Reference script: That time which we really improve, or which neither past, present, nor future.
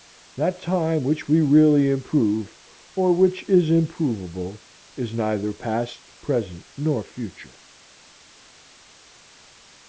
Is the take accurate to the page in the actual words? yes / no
no